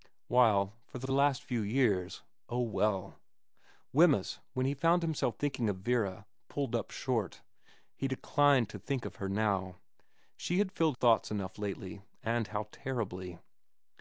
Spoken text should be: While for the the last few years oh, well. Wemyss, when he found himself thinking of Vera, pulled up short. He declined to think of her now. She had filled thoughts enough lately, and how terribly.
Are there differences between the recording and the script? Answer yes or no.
no